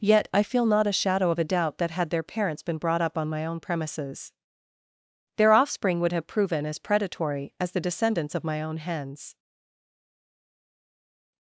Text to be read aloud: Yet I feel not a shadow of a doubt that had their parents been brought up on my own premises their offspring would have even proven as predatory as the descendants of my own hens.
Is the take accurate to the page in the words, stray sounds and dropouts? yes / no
no